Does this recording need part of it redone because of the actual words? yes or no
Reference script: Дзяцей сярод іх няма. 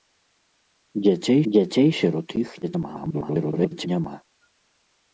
yes